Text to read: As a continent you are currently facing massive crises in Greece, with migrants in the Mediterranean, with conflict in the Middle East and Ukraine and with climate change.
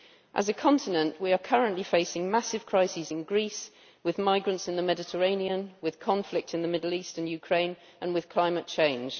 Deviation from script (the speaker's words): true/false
true